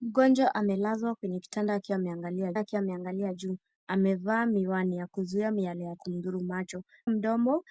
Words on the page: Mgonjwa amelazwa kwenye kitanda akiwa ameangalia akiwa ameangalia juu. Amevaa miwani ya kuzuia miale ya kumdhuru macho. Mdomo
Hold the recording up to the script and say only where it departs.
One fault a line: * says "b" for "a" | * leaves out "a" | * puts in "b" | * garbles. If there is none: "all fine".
all fine